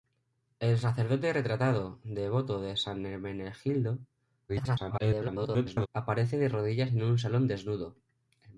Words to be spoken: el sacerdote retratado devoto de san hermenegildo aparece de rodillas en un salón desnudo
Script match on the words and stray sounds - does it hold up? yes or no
no